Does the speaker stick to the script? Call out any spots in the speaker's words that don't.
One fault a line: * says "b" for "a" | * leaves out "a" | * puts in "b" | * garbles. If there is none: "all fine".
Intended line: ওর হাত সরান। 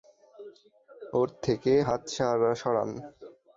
* puts in "থেকে"